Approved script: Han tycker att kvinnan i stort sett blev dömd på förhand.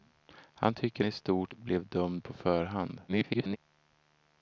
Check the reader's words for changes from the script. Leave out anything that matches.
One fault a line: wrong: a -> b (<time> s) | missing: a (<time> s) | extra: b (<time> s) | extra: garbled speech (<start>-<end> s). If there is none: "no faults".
missing: att kvinnan (1.0 s)
missing: sett (1.5 s)
extra: garbled speech (3.1-3.6 s)